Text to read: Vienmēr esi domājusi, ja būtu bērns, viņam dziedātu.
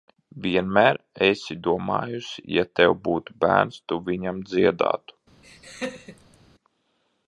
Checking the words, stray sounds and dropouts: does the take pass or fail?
fail